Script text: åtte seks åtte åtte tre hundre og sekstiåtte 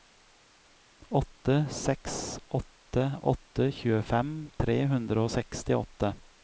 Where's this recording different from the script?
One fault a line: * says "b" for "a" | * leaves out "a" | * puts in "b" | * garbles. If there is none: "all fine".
* puts in "tjuefem"